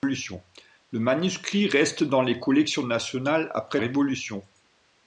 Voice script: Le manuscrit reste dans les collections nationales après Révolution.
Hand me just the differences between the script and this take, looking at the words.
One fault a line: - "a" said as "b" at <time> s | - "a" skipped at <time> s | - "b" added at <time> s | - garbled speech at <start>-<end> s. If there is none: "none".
none